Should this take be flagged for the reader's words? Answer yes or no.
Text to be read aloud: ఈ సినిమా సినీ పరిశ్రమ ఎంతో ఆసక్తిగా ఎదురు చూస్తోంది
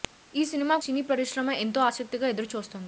no